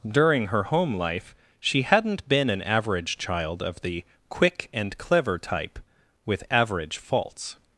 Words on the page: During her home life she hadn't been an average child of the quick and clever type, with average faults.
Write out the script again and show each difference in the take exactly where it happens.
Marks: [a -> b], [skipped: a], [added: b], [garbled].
During her home life she hadn't been an average child of the quick and clever type, with average faults.